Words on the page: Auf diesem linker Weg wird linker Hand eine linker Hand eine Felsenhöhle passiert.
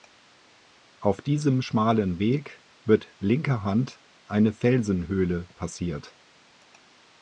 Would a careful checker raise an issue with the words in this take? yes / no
yes